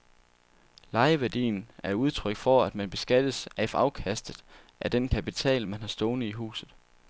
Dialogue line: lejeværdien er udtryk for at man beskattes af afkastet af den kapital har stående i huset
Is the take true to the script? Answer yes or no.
no